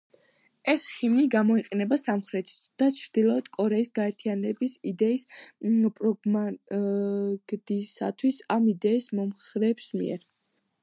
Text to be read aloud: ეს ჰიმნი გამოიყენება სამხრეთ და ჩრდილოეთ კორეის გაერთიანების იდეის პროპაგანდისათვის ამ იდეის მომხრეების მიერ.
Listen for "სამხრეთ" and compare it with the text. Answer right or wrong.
right